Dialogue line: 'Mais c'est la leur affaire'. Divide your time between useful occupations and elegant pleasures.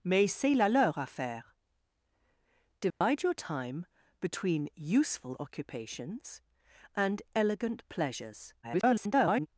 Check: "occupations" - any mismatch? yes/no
no